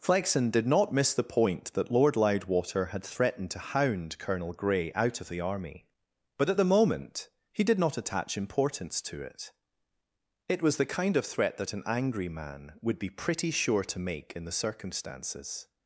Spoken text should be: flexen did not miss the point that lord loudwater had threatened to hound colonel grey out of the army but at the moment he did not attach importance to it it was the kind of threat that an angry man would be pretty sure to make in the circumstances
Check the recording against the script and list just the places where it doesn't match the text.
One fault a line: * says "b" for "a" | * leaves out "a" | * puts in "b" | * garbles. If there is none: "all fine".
all fine